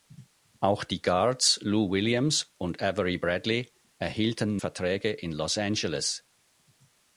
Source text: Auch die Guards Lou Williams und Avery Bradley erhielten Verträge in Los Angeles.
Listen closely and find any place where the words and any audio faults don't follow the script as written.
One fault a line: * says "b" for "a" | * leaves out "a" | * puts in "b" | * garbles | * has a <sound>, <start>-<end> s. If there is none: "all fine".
all fine